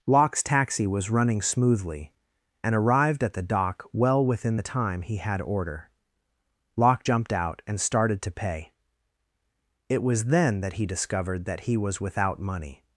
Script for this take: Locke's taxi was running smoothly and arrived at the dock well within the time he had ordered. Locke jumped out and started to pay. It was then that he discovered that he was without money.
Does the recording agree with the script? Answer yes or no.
no